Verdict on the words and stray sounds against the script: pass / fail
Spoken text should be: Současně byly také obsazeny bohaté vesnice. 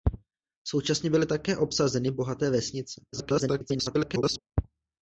fail